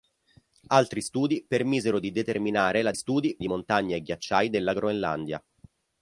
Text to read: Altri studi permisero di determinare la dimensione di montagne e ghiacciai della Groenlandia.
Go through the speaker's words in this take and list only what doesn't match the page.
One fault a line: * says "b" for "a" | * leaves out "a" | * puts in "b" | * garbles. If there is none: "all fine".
* says "studi" for "dimensione"